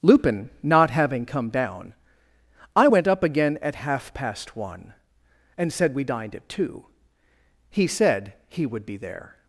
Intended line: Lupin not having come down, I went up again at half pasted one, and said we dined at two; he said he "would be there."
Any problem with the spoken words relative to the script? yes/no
yes